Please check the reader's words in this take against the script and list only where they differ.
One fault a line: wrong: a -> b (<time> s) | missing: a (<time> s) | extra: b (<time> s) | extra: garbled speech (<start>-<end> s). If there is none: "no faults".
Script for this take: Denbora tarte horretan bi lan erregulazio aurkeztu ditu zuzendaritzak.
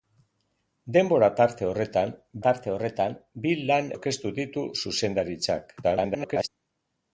extra: tarte horretan (2.5 s)
missing: erregulazio (3.9 s)
extra: garbled speech (5.8-6.5 s)